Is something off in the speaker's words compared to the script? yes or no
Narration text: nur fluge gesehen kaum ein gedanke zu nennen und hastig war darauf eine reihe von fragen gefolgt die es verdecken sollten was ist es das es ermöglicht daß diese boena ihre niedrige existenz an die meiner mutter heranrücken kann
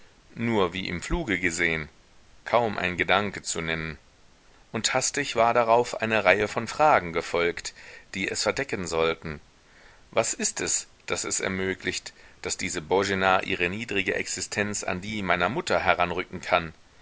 yes